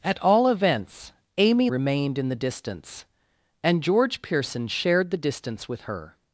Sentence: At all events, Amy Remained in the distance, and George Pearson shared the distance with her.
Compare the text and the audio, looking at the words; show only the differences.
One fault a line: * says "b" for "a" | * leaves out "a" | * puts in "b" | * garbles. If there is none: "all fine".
all fine